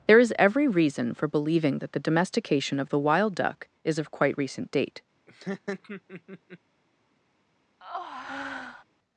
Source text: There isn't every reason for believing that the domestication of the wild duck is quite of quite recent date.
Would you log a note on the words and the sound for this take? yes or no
yes